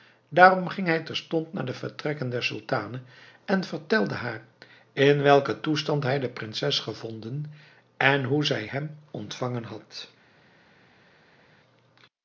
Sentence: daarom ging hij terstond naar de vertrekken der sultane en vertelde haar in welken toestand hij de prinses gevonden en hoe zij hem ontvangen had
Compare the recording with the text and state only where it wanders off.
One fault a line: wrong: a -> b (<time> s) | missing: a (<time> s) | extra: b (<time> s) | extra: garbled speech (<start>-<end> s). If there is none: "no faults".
no faults